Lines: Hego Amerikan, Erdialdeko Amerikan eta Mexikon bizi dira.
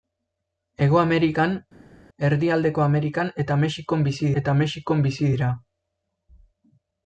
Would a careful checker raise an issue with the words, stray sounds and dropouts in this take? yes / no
yes